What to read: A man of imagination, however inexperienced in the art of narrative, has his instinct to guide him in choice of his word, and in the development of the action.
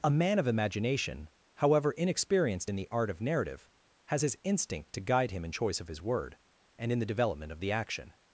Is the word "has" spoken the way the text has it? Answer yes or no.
yes